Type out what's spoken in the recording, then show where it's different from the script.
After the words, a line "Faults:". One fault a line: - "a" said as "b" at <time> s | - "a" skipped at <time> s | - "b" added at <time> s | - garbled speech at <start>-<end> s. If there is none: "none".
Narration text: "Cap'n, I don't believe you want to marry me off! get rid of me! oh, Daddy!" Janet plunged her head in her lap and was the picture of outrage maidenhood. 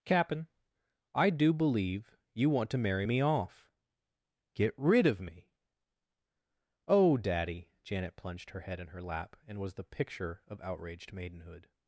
"Cap'n, I do believe you want to marry me off! get rid of me! oh, Daddy!" Janet plunged her head in her lap and was the picture of outraged maidenhood.
Faults:
- "don't" said as "do" at 1.3 s
- "outrage" said as "outraged" at 10.6 s